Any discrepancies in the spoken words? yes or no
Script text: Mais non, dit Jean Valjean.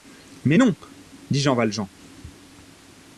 no